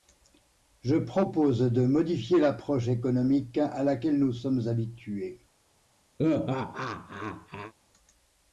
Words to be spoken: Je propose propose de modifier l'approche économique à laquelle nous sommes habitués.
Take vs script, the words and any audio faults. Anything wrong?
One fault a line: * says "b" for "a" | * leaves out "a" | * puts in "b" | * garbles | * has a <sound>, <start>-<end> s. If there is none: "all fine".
* leaves out "propose"
* has a laugh, 6.2-7.7 s